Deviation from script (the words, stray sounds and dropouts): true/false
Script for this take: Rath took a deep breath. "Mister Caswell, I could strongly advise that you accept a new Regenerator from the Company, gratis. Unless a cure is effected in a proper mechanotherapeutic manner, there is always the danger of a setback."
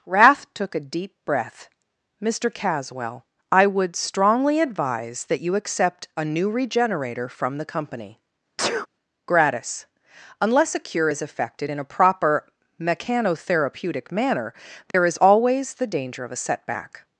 true